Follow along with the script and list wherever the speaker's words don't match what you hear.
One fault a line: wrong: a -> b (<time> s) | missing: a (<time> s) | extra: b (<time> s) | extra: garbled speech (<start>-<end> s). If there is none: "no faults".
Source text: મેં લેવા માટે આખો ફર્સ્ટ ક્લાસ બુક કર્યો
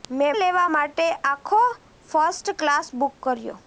no faults